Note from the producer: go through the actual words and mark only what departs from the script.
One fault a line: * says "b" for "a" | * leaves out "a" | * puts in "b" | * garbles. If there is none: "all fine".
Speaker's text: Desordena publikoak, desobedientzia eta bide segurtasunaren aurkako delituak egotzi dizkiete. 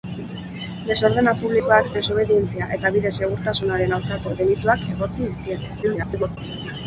* garbles